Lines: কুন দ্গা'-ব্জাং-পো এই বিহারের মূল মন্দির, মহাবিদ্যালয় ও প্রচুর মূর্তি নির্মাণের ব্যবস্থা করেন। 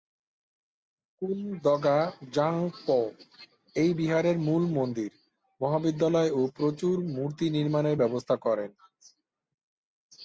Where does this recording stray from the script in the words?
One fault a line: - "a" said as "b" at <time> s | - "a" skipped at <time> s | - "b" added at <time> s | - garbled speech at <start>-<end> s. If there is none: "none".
none